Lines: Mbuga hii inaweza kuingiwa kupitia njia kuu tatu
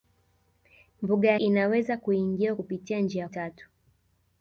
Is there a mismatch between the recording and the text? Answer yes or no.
yes